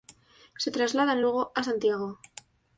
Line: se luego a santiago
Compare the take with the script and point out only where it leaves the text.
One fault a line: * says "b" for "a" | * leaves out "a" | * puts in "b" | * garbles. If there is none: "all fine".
* puts in "trasladan"